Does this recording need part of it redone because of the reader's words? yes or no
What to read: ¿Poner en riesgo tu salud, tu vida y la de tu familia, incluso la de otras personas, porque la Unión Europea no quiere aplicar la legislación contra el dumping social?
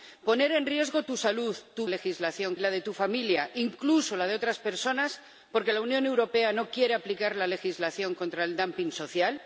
yes